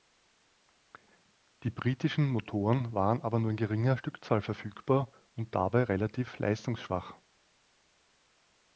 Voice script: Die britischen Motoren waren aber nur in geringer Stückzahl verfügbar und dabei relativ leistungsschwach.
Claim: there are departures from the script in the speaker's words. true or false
false